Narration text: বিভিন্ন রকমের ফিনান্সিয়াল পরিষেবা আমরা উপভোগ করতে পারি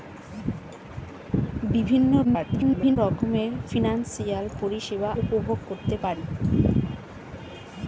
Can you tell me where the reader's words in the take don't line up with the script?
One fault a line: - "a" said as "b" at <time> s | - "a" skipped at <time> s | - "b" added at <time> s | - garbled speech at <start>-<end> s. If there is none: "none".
- garbled speech at 2.2-3.0 s
- "আমরা" skipped at 5.1 s